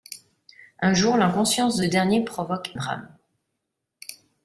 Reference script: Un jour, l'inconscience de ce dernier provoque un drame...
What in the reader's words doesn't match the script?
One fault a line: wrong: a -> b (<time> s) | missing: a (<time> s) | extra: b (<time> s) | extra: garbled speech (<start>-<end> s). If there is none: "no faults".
missing: ce (1.8 s)
missing: un (2.7 s)